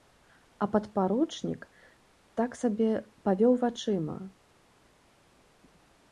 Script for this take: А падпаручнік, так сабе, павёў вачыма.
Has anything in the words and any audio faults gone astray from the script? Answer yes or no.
no